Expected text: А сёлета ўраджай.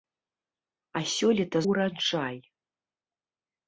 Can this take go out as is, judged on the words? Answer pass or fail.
pass